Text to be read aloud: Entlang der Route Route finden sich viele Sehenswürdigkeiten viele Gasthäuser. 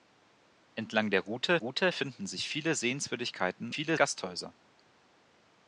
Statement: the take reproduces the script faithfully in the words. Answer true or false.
true